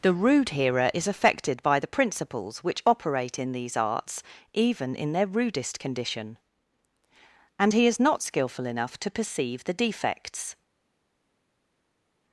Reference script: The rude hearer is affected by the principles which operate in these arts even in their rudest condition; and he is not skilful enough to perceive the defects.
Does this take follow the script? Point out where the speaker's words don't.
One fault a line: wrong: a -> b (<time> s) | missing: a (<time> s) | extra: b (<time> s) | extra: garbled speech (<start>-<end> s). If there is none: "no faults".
no faults